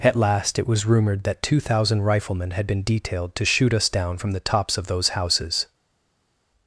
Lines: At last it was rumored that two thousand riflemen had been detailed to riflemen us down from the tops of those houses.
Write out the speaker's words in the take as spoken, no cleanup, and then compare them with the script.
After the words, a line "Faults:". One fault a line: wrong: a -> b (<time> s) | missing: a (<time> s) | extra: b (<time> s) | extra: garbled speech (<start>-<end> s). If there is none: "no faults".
At last it was rumored that two thousand riflemen had been detailed to shoot us down from the tops of those houses.
Faults:
wrong: riflemen -> shoot (3.5 s)